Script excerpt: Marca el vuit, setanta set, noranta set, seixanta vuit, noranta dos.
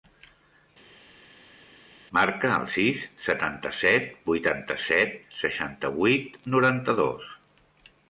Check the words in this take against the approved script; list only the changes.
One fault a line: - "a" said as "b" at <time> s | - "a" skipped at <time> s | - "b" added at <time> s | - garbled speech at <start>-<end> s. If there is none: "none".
- "vuit" said as "sis" at 2.8 s
- "noranta" said as "vuitanta" at 4.3 s